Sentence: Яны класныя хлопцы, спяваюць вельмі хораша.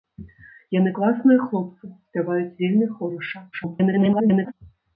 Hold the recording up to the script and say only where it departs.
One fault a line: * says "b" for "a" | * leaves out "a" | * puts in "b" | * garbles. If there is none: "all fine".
* garbles